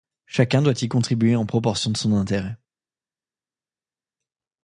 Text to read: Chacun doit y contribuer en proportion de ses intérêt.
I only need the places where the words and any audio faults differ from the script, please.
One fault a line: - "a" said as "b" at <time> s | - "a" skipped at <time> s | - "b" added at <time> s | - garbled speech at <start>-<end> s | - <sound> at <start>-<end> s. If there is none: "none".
- "ses" said as "son" at 2.0 s